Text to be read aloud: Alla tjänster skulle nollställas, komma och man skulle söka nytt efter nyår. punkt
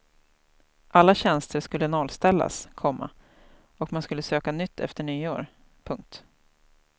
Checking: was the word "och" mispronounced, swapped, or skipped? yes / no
no